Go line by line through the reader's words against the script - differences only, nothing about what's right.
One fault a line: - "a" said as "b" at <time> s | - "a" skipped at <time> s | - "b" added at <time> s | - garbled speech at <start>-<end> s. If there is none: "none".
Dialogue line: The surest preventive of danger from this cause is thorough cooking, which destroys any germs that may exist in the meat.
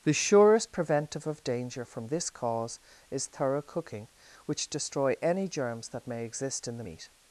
- "destroys" said as "destroy" at 4.7 s